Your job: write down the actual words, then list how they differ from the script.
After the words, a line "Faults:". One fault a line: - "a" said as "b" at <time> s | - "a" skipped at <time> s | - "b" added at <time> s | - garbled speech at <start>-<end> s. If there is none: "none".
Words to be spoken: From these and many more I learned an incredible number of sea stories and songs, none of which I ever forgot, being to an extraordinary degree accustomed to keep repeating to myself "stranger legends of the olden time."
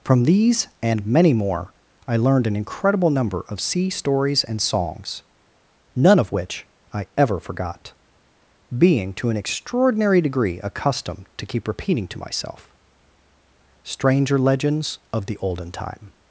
From these and many more I learned an incredible number of sea stories and songs, none of which I ever forgot, being to an extraordinary degree accustomed to keep repeating to myself "stranger legends of the olden time."
Faults:
none